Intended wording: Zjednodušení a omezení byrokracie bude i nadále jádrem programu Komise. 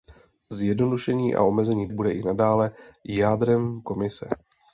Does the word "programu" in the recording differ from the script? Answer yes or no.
yes